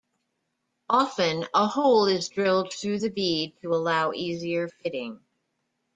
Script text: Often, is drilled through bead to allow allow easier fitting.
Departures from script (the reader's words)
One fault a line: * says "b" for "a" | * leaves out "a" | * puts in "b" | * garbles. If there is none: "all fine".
* puts in "a hole"
* puts in "the"
* leaves out "allow"